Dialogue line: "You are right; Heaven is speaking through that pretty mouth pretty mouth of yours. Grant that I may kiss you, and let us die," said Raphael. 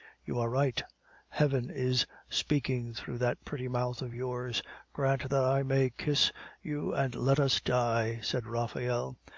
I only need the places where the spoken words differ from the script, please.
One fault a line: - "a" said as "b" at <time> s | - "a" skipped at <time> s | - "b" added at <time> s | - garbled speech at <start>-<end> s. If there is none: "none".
- "pretty mouth" skipped at 4.0 s